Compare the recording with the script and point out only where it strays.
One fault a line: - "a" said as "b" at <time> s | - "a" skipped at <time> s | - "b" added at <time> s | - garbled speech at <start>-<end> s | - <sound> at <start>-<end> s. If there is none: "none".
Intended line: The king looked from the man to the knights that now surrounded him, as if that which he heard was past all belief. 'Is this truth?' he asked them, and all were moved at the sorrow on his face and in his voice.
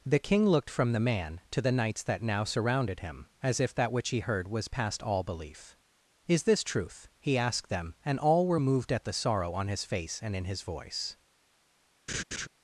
- laugh at 12.1-12.5 s